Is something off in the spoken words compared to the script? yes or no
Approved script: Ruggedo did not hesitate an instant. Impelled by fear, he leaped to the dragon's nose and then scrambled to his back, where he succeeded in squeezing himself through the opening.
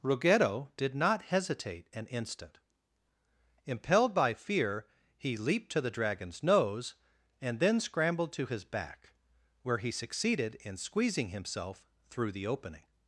no